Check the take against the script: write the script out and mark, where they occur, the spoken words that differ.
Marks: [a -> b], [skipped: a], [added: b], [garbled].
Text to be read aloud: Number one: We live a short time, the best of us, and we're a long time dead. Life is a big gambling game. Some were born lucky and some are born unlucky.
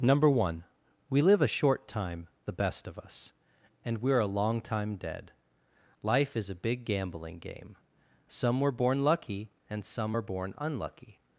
Number one: We live a short time, the best of us, and we're a long time dead. Life is a big gambling game. Some were born lucky and some are born unlucky.